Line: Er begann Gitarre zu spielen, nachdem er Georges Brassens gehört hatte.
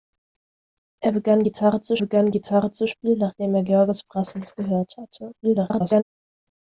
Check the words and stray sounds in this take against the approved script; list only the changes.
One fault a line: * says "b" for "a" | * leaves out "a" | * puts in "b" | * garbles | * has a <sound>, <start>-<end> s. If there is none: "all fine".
* puts in "begann Gitarre zu"
* garbles